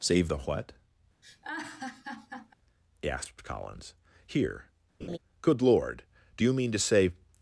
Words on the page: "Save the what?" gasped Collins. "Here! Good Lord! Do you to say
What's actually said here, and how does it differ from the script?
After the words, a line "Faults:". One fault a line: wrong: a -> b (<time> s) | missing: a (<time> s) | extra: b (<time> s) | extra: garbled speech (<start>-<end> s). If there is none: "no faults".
"Save the what?" gasped Collins. "Here! Good Lord! Do you mean to say
Faults:
extra: mean (6.5 s)